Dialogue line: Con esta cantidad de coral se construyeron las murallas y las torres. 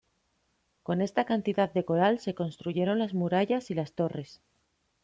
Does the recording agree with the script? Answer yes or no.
yes